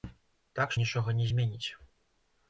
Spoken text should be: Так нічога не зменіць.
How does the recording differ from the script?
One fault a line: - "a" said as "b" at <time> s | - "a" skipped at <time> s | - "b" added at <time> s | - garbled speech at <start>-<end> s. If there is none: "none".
none